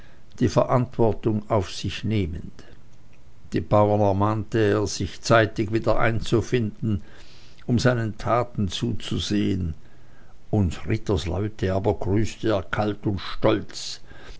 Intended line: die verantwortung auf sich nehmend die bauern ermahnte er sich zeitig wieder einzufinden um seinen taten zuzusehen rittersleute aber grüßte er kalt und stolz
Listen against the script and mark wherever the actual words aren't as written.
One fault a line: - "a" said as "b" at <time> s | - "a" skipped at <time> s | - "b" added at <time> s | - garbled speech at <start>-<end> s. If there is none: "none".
- "uns" added at 10.5 s